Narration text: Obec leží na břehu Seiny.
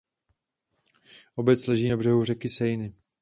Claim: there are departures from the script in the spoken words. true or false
true